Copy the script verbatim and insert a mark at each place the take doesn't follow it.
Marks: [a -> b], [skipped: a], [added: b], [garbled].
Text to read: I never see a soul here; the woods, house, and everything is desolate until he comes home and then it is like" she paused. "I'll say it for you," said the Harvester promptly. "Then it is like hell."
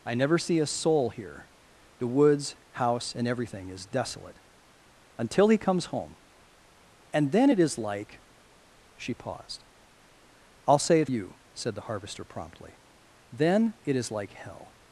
I never see a soul here; the woods, house, and everything is desolate until he comes home and then it is like" she paused. "I'll say it [skipped: for] you," said the Harvester promptly. "Then it is like hell."